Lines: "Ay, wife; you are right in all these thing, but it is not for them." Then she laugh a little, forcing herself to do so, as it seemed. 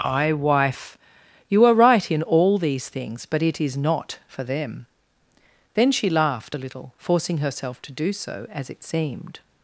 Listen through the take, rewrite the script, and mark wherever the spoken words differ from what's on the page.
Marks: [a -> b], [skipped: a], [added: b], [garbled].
"Ay, wife; you are right in all these [thing, -> things] but it is not for them." Then she [laugh -> laughed] a little, forcing herself to do so, as it seemed.